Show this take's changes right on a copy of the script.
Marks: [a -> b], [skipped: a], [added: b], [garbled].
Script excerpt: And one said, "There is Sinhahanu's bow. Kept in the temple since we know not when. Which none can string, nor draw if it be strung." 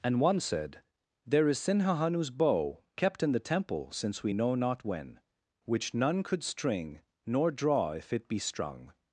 And one said, "There is Sinhahanu's bow. Kept in the temple since we know not when. Which none [can -> could] string, nor draw if it be strung."